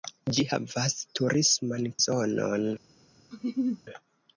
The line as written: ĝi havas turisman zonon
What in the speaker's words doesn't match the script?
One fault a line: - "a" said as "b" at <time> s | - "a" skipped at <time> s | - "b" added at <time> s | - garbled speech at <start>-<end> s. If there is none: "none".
none